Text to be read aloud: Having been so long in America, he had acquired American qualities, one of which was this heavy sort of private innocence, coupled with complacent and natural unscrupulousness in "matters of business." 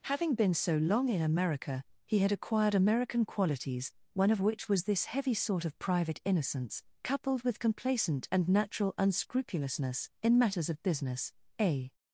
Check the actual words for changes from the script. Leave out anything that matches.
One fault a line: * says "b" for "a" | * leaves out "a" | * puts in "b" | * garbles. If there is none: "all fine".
* puts in "A"